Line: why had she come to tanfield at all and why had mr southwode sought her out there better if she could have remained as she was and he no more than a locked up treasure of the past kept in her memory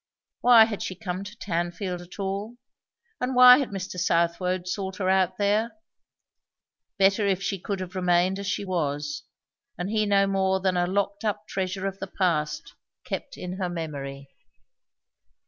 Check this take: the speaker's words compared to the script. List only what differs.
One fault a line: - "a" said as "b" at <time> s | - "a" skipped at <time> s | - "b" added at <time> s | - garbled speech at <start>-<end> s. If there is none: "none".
none